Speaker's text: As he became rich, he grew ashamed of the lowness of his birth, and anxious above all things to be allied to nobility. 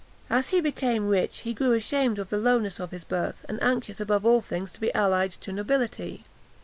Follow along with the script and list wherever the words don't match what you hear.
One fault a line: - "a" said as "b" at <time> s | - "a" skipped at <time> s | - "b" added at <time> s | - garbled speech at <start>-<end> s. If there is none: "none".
none